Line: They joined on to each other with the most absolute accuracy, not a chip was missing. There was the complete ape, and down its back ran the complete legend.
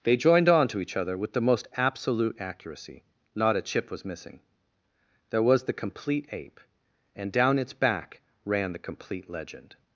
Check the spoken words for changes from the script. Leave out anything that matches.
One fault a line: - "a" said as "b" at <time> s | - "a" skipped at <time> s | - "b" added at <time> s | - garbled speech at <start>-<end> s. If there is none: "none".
none